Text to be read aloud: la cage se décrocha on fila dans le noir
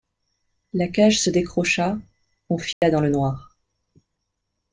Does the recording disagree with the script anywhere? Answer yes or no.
no